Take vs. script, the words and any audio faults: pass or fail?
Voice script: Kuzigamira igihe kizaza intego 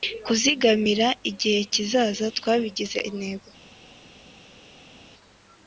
fail